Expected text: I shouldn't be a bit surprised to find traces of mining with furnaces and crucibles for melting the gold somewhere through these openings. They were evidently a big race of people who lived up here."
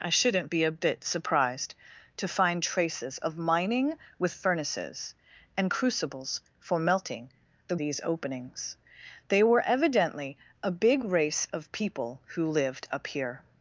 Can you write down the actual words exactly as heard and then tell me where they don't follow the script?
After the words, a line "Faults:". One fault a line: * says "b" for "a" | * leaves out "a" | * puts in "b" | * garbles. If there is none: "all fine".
I shouldn't be a bit surprised to find traces of mining with furnaces and crucibles for melting the these openings. They were evidently a big race of people who lived up here."
Faults:
* leaves out "gold somewhere through"